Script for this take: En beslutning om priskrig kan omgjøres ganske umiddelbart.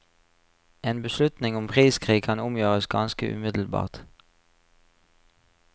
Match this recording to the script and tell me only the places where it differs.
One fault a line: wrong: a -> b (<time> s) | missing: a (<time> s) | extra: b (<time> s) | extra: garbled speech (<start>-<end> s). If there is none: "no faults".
no faults